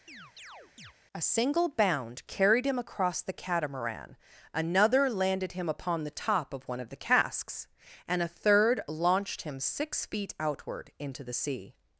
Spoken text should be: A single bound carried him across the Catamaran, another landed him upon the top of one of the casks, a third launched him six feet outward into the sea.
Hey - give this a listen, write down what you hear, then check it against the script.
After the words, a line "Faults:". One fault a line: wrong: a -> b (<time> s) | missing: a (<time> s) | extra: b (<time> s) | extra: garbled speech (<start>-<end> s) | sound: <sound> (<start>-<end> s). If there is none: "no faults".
A single bound carried him across the Catamaran, another landed him upon the top of one of the casks, and a third launched him six feet outward into the sea.
Faults:
sound: chirp (0.1-0.9 s)
extra: and (8.1 s)